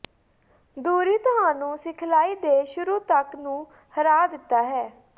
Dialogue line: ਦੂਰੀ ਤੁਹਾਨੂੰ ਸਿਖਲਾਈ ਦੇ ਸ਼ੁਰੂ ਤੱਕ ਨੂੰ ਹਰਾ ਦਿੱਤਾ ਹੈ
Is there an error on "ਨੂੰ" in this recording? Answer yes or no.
no